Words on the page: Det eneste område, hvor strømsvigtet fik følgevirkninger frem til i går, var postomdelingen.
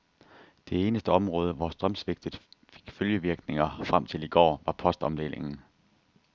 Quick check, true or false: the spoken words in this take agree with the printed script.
true